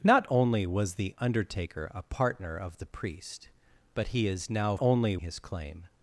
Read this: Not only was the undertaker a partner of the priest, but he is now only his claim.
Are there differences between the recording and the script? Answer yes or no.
no